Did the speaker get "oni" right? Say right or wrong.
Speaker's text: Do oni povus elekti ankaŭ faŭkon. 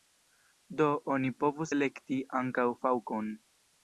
right